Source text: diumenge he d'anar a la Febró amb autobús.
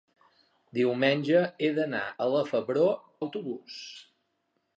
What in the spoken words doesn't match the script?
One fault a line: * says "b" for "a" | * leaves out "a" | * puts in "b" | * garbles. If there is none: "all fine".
* leaves out "amb"